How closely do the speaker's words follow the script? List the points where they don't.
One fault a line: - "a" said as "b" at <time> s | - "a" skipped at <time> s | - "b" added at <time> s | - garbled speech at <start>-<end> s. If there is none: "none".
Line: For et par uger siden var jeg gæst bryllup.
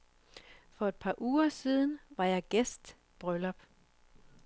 none